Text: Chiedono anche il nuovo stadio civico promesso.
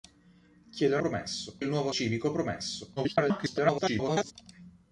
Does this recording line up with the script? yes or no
no